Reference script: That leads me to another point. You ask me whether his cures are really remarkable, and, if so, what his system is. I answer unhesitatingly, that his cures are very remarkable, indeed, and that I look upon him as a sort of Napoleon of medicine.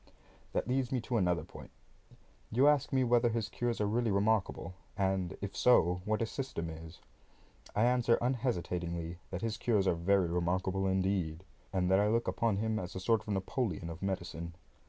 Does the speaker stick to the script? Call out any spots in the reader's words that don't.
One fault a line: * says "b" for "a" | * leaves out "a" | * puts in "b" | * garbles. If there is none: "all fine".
all fine